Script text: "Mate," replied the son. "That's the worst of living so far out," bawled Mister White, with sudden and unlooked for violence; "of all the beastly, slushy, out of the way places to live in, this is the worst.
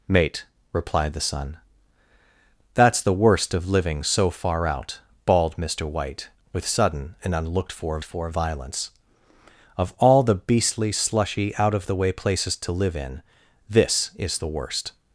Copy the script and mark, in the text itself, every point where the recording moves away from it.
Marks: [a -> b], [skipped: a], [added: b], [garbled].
"Mate," replied the son. "That's the worst of living so far out," bawled Mister White, with sudden and unlooked for [added: for] violence; "of all the beastly, slushy, out of the way places to live in, this is the worst.